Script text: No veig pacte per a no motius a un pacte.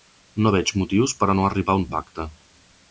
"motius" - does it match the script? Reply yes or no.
no